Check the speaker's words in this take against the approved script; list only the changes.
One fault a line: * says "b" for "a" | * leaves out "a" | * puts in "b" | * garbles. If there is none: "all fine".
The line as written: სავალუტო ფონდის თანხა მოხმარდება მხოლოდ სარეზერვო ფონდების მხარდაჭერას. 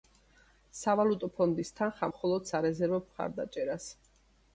* leaves out "მოხმარდება"
* leaves out "ფონდების"